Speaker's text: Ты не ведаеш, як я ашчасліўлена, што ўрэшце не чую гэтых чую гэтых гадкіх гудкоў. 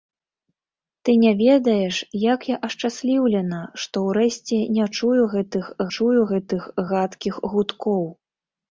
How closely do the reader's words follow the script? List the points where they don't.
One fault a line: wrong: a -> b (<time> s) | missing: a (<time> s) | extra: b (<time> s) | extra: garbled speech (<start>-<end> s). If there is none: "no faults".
no faults